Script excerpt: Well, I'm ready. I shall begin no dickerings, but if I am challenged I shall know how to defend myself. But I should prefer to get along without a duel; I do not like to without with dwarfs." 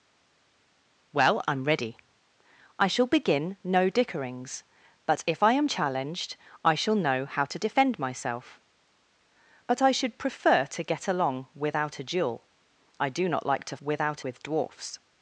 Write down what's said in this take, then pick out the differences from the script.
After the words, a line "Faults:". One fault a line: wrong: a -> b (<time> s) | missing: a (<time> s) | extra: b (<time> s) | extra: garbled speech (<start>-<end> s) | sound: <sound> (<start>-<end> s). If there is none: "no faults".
Well, I'm ready. I shall begin no dickerings, but if I am challenged I shall know how to defend myself. But I should prefer to get along without a duel; I do not like to without with dwarfs."
Faults:
no faults